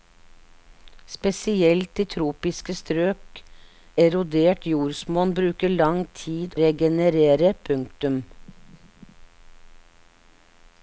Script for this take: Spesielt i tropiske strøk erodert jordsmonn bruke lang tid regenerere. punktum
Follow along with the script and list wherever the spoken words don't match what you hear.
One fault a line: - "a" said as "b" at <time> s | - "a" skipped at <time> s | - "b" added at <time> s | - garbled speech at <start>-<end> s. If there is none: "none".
none